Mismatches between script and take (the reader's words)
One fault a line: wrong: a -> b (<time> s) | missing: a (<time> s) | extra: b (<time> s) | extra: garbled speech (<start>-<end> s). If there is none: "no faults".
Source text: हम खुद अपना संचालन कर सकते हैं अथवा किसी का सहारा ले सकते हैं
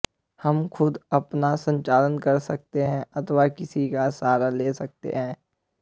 no faults